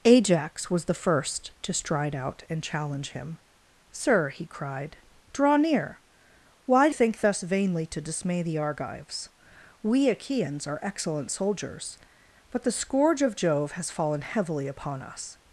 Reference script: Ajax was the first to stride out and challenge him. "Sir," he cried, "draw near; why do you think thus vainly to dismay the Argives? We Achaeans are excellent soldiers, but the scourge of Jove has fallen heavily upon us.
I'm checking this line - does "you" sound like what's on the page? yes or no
no